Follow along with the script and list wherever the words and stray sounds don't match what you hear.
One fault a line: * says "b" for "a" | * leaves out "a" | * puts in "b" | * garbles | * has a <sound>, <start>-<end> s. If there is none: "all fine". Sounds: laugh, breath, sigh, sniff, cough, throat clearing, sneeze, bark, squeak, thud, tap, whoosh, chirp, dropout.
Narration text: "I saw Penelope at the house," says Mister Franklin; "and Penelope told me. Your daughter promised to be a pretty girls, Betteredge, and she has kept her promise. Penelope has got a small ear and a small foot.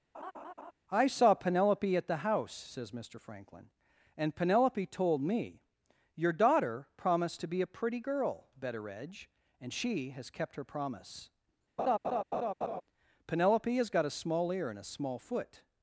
* has a laugh, 0.1-0.7 s
* says "girl" for "girls"
* has a laugh, 11.8-12.8 s